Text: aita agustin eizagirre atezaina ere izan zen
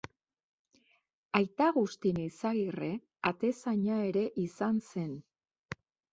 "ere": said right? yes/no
yes